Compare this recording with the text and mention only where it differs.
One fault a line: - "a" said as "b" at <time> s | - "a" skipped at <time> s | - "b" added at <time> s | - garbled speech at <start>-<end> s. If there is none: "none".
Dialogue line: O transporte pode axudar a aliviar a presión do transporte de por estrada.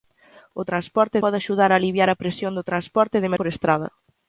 none